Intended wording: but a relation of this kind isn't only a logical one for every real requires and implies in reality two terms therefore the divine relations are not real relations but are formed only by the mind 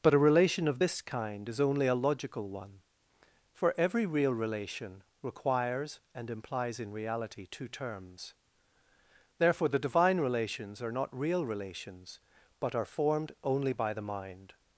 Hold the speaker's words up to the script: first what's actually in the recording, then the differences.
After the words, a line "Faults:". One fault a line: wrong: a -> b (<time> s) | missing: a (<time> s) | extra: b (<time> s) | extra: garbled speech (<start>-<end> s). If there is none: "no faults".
but a relation of this kind is only a logical one for every real relation requires and implies in reality two terms therefore the divine relations are not real relations but are formed only by the mind
Faults:
wrong: isn't -> is (1.5 s)
extra: relation (4.3 s)